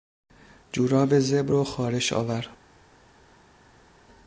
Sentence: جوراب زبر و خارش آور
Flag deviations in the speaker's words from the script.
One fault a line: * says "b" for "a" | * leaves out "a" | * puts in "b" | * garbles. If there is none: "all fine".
all fine